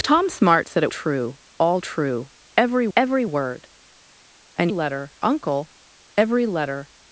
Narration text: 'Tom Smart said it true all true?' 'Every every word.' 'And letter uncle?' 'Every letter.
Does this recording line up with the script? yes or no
yes